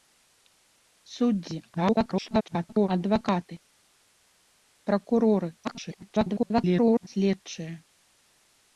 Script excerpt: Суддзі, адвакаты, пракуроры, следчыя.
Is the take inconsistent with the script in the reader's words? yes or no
yes